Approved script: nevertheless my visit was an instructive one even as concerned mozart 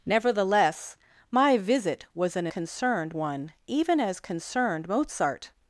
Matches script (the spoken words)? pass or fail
fail